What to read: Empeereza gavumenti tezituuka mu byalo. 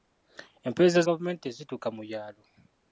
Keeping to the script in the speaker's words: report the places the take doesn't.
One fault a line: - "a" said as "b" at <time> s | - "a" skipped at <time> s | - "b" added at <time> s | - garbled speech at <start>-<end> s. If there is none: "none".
none